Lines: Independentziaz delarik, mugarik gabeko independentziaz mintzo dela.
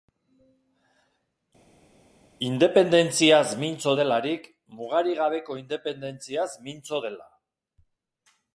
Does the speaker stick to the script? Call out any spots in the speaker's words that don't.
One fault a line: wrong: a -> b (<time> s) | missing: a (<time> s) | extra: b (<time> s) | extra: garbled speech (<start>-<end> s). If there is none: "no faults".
extra: mintzo (3.6 s)